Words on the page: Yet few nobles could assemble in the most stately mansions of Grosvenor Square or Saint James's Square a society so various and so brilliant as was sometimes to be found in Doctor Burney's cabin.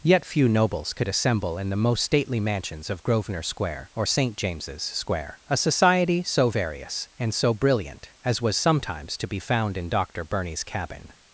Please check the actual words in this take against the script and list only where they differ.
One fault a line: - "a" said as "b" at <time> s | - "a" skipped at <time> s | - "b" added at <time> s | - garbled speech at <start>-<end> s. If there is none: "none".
none